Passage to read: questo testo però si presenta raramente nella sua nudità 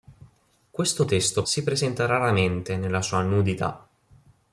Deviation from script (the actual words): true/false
true